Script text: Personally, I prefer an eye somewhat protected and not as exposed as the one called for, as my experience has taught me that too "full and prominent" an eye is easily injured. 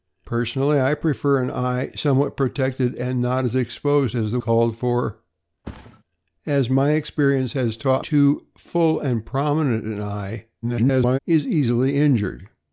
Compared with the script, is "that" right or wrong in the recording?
wrong